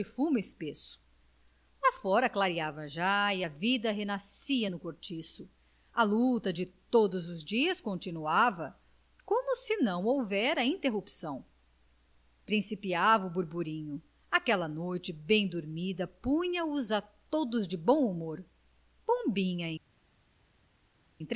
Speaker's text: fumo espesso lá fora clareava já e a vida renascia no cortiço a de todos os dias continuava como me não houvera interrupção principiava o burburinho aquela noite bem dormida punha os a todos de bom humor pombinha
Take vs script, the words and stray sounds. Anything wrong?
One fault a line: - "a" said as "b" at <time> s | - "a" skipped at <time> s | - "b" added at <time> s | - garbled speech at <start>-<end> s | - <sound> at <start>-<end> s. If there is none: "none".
- "luta" added at 6.0 s
- "me" said as "se" at 9.6 s